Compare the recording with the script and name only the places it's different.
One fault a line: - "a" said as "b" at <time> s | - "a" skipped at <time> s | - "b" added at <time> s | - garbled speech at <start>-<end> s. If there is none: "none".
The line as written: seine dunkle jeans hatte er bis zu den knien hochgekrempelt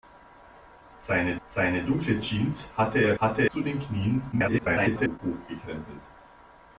- "seine" added at 1.4 s
- "bis" said as "hatte" at 3.2 s
- garbled speech at 4.3-5.2 s